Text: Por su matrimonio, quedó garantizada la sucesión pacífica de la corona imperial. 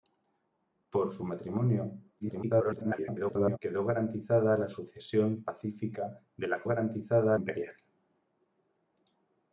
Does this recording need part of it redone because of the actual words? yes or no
yes